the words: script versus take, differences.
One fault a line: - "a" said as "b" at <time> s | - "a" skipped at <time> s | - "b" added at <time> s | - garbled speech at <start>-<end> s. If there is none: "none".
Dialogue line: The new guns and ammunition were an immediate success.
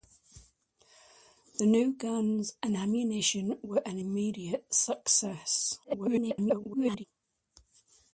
- garbled speech at 5.8-7.0 s